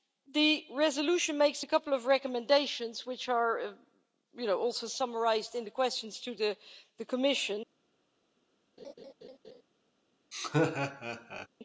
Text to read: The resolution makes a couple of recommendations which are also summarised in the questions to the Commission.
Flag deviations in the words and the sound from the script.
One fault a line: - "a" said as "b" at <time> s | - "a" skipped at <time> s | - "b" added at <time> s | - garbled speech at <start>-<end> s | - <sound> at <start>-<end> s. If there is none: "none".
- laugh at 8.8-9.6 s
- laugh at 10.3-11.5 s